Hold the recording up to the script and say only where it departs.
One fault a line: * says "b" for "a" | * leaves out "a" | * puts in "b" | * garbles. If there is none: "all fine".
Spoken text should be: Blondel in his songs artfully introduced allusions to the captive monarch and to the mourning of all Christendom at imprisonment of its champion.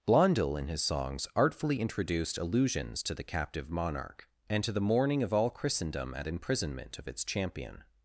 all fine